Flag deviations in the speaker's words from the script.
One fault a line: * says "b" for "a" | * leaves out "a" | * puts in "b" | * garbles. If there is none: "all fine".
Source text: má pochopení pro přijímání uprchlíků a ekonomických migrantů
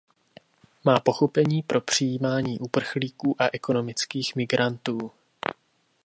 all fine